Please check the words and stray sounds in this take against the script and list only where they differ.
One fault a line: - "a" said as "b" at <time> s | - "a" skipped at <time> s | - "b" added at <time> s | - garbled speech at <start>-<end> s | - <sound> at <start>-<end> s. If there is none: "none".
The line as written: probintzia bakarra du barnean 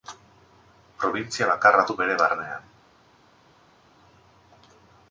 - "bere" added at 2.0 s